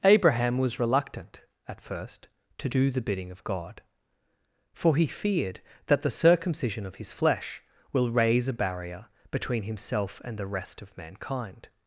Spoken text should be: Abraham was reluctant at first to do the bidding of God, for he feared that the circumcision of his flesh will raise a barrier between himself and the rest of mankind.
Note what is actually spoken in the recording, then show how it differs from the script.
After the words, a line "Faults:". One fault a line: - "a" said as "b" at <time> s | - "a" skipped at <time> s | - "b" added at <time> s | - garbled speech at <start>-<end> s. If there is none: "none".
Abraham was reluctant at first to do the bidding of God, for he feared that the circumcision of his flesh will raise a barrier between himself and the rest of mankind.
Faults:
none